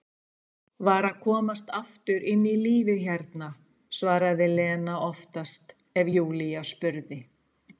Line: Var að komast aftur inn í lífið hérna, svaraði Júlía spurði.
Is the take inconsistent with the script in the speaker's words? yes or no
yes